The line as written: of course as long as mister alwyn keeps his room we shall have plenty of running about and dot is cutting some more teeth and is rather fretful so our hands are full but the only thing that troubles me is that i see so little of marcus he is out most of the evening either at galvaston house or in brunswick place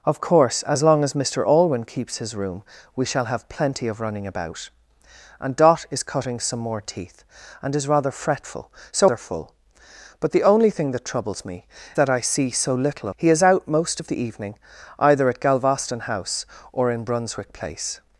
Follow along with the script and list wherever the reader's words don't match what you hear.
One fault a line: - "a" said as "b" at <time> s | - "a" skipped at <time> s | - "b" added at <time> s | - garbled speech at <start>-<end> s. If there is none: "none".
- "our hands" skipped at 9.1 s
- "is" skipped at 11.6 s
- "of marcus" skipped at 13.1 s